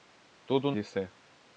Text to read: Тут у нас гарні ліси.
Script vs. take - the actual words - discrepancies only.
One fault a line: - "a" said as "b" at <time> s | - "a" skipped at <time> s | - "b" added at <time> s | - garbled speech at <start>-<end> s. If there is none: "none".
- "нас гарні" skipped at 0.7 s